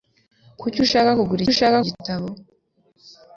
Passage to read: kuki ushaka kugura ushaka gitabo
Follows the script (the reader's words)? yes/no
yes